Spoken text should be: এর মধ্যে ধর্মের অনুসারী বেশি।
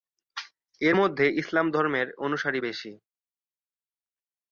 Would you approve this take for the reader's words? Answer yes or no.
no